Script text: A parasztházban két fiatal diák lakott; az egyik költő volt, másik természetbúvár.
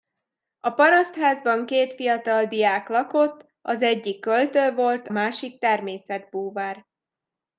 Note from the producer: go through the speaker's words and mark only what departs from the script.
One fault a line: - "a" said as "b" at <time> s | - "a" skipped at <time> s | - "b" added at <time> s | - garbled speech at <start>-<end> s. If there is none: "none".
none